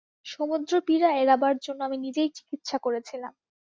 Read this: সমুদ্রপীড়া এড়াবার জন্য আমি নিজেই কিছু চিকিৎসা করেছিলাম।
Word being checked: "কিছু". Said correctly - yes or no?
no